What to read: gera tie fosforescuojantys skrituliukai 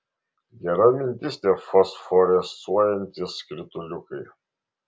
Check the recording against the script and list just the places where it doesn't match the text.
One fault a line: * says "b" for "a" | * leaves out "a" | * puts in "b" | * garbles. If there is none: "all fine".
* puts in "mintis"